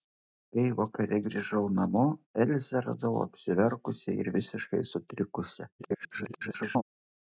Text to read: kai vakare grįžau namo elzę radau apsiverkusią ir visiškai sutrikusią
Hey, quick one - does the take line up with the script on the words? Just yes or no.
no